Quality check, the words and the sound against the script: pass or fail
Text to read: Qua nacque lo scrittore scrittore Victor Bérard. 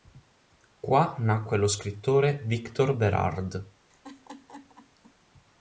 fail